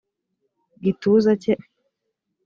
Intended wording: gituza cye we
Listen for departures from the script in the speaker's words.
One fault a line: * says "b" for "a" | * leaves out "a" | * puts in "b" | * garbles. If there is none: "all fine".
all fine